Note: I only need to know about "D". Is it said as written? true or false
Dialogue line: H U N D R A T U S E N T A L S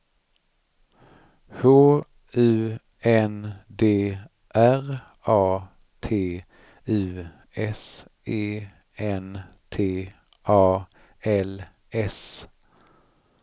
true